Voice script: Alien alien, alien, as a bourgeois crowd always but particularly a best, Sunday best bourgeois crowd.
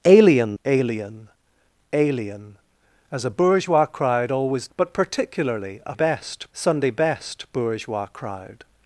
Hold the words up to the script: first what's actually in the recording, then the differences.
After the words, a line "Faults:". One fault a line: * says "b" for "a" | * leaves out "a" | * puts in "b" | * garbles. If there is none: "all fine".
Alien alien, alien, as a bourgeois crowd always but particularly a best, Sunday best bourgeois crowd.
Faults:
all fine